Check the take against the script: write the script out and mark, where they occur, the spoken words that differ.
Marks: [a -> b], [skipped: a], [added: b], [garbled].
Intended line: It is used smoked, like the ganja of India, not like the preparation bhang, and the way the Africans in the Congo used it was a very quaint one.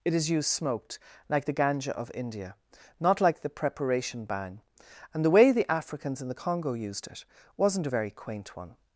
It is used smoked, like the ganja of India, not like the preparation bhang, and the way the Africans in the Congo used it [was -> wasn't] a very quaint one.